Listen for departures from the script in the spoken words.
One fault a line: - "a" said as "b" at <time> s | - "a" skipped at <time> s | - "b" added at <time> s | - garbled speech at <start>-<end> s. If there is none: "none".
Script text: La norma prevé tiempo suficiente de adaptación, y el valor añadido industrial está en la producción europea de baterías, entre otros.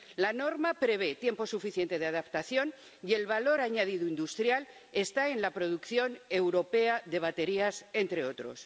none